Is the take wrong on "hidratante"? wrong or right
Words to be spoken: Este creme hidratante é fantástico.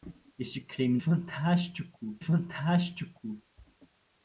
wrong